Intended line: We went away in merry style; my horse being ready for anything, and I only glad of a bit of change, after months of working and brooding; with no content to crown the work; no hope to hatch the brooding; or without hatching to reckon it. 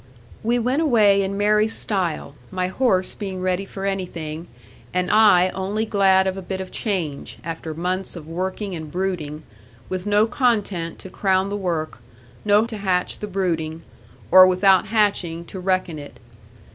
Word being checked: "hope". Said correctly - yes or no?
no